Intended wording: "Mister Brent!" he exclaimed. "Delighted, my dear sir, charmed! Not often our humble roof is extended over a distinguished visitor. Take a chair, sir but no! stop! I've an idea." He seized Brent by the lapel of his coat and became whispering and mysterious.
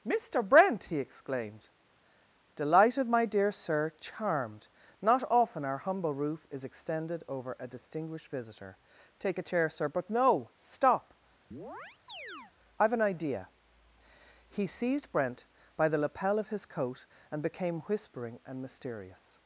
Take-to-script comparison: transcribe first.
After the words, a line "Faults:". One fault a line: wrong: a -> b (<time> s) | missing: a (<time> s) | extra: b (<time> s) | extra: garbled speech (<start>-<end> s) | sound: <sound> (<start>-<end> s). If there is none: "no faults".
"Mister Brent!" he exclaimed. "Delighted, my dear sir, charmed! Not often our humble roof is extended over a distinguished visitor. Take a chair, sir but no! stop! I've an idea." He seized Brent by the lapel of his coat and became whispering and mysterious.
Faults:
sound: chirp (11.5-12.5 s)